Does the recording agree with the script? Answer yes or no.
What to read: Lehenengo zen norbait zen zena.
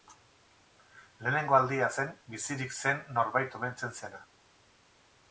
no